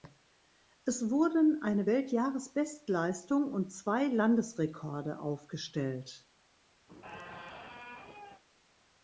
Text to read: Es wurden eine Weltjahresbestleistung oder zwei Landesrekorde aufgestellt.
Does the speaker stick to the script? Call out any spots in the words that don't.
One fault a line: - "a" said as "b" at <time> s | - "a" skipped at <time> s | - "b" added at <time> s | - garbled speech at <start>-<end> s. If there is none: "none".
- "oder" said as "und" at 3.5 s